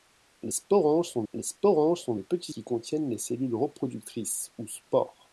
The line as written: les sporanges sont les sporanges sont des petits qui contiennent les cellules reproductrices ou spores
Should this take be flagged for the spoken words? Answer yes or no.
no